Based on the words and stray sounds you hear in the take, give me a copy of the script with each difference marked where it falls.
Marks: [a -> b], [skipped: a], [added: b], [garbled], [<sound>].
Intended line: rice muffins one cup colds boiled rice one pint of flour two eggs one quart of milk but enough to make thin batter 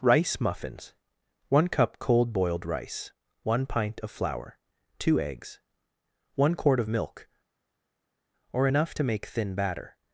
rice muffins one cup [colds -> cold] boiled rice one pint of flour two eggs one quart of milk [but -> or] enough to make thin batter